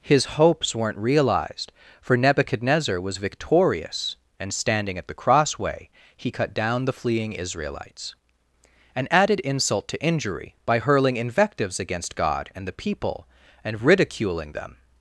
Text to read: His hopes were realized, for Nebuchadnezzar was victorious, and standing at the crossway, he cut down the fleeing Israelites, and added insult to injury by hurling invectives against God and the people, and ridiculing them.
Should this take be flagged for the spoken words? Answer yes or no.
yes